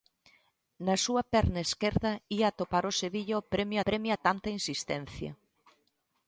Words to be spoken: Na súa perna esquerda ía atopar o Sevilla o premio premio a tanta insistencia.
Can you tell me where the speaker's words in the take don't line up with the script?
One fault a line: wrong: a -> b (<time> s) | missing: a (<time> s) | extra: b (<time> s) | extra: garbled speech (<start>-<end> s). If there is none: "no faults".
no faults